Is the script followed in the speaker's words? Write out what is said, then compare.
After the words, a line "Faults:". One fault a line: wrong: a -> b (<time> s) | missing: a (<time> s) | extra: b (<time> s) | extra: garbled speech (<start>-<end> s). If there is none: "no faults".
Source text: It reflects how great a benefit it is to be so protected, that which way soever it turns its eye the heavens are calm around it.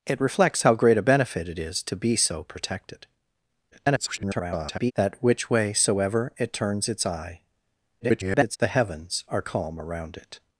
It reflects how great a benefit it is to be so protected, [garbled] that which way soever it turns its eye [garbled] the heavens are calm around it.
Faults:
extra: garbled speech (3.7-4.9 s)
extra: garbled speech (8.0-8.6 s)